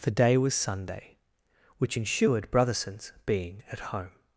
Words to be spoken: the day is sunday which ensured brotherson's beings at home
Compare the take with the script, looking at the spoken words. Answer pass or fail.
fail